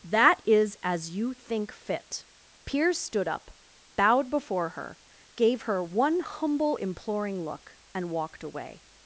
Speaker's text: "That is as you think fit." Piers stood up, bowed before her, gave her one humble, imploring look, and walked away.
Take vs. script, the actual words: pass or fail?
pass